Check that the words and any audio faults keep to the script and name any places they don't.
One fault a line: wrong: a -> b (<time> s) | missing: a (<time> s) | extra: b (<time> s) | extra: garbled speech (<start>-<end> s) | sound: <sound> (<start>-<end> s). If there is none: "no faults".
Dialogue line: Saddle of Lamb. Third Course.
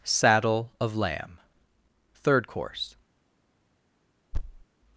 sound: thud (4.3-4.6 s)